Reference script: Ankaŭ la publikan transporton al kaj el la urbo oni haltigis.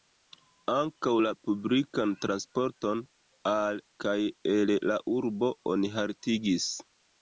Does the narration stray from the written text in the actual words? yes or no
no